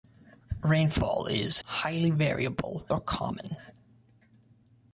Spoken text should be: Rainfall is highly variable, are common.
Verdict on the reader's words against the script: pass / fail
pass